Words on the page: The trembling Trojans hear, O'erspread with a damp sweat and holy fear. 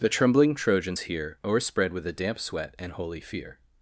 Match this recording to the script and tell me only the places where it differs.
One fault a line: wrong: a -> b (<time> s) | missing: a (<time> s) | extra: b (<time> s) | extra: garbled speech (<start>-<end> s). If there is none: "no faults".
no faults